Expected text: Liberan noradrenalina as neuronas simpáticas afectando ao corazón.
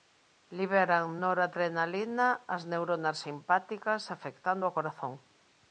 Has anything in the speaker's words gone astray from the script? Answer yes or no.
no